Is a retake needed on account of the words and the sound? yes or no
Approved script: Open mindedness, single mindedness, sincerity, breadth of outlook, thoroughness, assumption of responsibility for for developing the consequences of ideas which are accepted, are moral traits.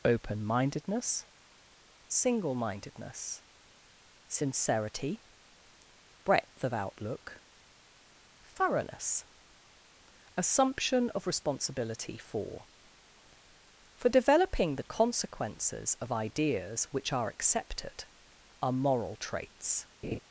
yes